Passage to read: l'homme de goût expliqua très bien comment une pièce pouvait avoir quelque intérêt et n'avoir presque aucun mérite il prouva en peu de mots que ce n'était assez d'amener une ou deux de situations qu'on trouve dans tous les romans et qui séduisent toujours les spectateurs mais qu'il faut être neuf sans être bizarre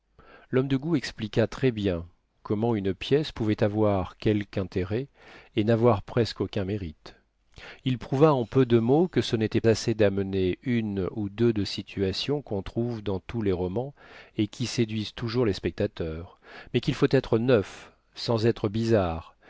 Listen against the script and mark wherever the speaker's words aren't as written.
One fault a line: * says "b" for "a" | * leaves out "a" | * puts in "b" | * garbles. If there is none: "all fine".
all fine